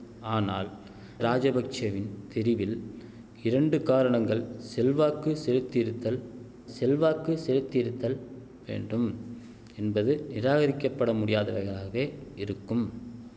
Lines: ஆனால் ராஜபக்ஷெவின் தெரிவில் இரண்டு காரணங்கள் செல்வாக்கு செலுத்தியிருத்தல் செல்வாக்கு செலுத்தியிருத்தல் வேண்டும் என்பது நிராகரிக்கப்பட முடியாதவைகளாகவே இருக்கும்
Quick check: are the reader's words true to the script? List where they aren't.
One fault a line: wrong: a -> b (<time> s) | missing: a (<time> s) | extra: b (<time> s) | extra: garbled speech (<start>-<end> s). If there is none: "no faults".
no faults